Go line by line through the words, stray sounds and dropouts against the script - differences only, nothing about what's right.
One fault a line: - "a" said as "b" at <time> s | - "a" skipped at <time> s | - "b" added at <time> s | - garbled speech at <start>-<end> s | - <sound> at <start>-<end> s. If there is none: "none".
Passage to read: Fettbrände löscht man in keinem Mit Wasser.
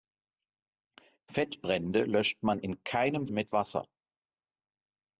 none